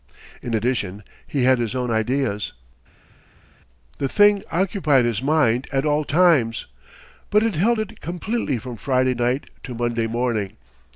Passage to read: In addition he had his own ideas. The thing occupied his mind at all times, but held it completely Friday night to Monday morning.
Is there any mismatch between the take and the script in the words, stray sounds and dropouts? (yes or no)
yes